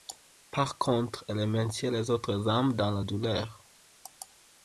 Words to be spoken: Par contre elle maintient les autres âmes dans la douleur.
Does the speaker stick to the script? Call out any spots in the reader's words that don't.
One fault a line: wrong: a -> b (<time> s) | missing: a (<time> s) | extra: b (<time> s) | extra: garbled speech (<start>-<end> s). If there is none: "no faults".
no faults